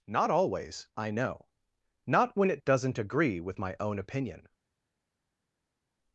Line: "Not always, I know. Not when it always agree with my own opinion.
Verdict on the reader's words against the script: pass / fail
fail